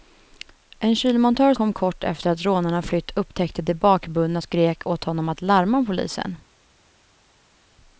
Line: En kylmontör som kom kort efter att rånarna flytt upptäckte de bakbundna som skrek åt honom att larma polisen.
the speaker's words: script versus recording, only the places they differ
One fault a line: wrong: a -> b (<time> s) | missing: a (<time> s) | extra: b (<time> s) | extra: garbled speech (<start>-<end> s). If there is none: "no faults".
missing: som (1.5 s)
missing: som (4.4 s)